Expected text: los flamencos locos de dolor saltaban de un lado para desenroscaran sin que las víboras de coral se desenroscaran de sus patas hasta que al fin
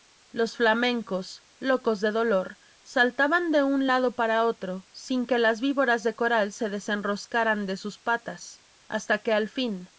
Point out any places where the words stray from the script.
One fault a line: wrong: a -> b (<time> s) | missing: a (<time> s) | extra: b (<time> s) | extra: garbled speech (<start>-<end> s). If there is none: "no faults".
wrong: desenroscaran -> otro (4.4 s)